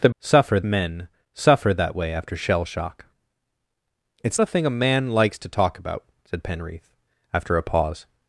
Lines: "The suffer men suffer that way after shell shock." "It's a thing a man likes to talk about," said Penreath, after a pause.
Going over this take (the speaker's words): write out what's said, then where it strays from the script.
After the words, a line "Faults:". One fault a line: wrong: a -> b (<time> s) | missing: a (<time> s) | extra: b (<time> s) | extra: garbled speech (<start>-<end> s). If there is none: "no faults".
"The suffer men suffer that way after shell shock." "It's a thing a man likes to talk about," said Penreath, after a pause.
Faults:
no faults